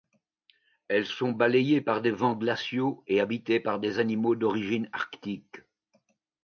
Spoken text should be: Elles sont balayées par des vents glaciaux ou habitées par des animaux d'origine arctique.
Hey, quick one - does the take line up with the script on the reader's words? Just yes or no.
no